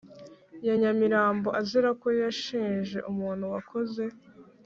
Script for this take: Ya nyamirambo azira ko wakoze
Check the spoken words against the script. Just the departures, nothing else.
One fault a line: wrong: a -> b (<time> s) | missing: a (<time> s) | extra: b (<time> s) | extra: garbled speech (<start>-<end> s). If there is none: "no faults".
extra: yashinje umuntu (2.2 s)